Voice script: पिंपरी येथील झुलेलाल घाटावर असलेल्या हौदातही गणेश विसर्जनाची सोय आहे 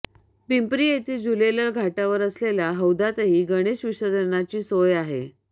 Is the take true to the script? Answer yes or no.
yes